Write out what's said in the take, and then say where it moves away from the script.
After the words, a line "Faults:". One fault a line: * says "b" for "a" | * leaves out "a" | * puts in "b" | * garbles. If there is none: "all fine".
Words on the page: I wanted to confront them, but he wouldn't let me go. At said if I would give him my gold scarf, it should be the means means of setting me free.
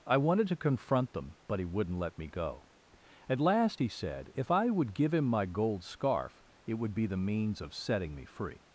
I wanted to confront them, but he wouldn't let me go. At last he said if I would give him my gold scarf, it would be the means of setting me free.
Faults:
* puts in "last he"
* says "would" for "should"
* leaves out "means"